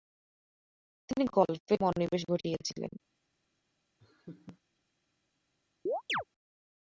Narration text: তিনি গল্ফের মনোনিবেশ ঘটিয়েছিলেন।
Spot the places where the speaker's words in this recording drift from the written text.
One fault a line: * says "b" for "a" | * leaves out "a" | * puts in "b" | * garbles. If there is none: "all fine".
all fine